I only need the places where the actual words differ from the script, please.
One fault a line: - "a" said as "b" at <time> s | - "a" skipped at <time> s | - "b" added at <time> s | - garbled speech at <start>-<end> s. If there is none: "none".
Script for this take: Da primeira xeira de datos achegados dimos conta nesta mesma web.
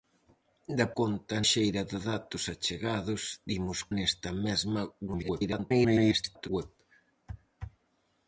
- "primeira" said as "conta" at 1.0 s
- "conta" skipped at 3.8 s
- garbled speech at 5.1-6.5 s